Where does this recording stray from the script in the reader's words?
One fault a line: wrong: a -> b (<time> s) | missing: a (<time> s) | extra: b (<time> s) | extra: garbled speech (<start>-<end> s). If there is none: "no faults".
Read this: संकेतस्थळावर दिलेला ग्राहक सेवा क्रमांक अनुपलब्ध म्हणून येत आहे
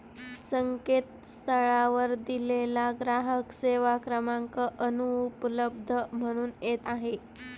no faults